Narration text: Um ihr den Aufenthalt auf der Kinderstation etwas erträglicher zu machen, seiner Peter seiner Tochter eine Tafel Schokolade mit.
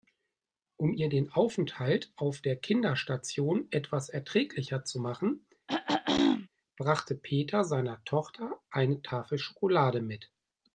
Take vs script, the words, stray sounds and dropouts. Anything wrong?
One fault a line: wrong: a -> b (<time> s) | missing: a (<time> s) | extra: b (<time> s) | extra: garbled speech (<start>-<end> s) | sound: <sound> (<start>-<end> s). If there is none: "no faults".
sound: throat clearing (5.7-6.5 s)
wrong: seiner -> brachte (6.8 s)